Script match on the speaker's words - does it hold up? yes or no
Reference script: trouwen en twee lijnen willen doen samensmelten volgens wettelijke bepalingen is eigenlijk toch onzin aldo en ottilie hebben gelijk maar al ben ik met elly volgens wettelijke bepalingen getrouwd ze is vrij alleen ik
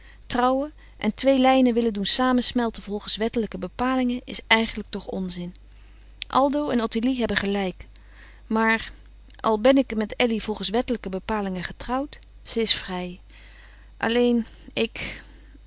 yes